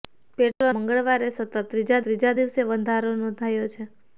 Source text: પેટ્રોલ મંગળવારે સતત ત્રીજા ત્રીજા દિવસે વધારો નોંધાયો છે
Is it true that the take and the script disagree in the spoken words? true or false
false